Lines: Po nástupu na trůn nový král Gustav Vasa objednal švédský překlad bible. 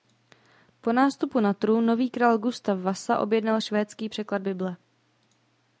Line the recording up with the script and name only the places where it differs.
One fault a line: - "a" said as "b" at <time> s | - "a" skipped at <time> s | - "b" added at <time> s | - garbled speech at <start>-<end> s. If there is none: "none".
none